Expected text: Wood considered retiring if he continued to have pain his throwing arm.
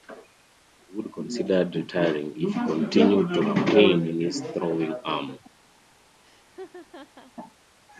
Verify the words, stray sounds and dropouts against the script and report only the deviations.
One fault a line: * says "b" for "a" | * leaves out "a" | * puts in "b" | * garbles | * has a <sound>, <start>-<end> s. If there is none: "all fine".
* puts in "in"
* has a laugh, 6.2-7.3 s